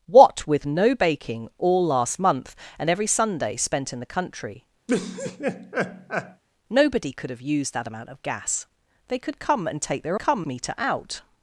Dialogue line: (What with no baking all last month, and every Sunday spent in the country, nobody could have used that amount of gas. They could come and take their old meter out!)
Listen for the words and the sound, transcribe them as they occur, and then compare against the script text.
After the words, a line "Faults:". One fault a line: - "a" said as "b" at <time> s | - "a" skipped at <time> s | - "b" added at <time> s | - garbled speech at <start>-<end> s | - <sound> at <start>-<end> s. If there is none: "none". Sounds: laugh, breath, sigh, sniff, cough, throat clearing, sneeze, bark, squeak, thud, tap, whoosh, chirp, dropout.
(What with no baking all last month, and every Sunday spent in the country, nobody could have used that amount of gas. They could come and take their come meter out!)
Faults:
- laugh at 4.9-6.4 s
- "old" said as "come" at 10.2 s